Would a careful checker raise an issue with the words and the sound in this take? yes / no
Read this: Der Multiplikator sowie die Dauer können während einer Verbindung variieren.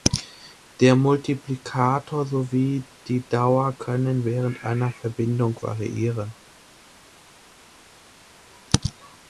no